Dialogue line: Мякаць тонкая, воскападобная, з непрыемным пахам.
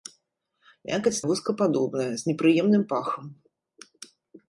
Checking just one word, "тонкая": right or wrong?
wrong